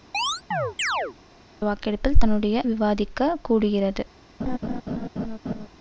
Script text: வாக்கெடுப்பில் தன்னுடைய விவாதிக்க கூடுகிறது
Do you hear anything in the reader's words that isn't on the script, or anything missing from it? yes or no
no